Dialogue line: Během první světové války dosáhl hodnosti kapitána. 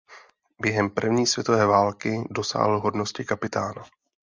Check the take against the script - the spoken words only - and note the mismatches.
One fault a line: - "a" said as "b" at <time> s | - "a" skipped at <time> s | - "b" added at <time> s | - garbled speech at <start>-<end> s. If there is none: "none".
none